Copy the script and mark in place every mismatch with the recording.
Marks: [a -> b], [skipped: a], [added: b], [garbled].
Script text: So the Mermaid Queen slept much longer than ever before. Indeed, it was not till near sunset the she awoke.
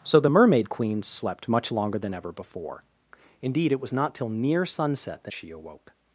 So the Mermaid Queen slept much longer than ever before. Indeed, it was not till near sunset the she awoke.